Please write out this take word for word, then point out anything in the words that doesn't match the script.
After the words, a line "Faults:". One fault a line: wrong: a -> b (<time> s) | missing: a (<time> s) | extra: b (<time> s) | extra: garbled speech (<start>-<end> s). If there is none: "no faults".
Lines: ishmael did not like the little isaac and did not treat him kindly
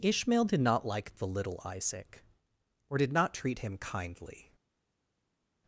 ishmael did not like the little isaac or did not treat him kindly
Faults:
wrong: and -> or (2.9 s)